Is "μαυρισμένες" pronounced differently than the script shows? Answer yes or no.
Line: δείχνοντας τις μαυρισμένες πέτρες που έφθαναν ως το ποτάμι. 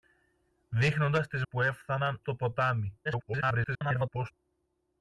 yes